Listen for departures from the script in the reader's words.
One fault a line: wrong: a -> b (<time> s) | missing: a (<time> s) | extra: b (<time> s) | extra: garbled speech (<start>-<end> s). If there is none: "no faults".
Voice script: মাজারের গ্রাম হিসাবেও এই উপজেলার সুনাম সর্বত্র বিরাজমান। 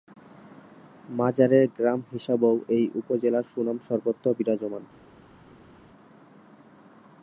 no faults